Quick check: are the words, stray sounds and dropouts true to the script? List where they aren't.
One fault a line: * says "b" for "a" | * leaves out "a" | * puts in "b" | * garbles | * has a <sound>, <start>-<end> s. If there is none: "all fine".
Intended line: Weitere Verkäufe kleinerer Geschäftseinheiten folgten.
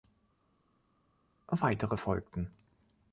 * leaves out "Verkäufe kleinerer Geschäftseinheiten"